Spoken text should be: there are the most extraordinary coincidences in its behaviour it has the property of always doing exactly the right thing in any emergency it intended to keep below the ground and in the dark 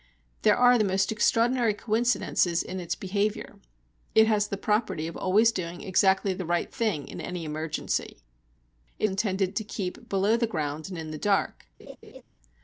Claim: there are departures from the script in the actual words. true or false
false